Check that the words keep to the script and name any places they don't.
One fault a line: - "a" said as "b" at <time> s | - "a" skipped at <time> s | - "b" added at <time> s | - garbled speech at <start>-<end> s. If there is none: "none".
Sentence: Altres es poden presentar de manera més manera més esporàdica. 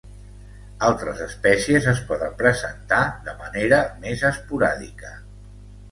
- "espècies" added at 1.2 s
- "manera més" skipped at 4.3 s